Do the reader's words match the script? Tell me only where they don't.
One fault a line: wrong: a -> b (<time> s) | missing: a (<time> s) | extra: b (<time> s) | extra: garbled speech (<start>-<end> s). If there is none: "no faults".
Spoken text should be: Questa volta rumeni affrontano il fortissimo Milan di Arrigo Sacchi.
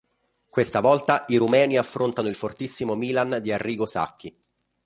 extra: i (1.3 s)